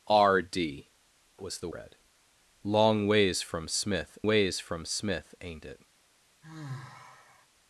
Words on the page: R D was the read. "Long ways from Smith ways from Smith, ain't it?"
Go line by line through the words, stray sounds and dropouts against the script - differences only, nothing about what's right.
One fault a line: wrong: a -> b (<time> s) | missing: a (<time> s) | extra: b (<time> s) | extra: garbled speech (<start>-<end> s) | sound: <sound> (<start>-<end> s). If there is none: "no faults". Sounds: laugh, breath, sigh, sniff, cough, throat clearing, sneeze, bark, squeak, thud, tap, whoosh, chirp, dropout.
sound: sigh (6.4-7.5 s)